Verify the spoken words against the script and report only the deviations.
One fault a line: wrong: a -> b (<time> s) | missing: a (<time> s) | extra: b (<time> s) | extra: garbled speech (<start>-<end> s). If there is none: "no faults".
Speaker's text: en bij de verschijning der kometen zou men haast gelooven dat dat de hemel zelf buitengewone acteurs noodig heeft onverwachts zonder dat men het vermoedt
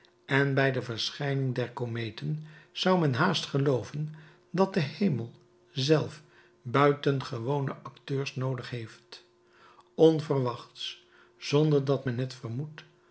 missing: dat (4.7 s)